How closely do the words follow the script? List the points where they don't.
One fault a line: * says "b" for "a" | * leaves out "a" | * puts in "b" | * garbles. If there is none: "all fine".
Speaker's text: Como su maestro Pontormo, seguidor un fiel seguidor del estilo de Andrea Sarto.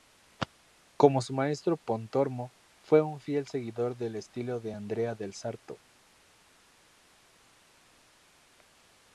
* says "fue" for "seguidor"
* puts in "del"